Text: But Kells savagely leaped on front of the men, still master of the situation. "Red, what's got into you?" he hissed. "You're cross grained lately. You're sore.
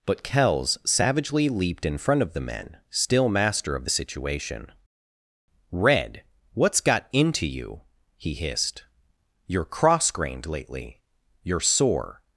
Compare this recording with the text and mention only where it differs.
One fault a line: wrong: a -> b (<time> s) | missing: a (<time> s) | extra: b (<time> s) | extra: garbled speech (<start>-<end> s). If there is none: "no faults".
wrong: on -> in (1.9 s)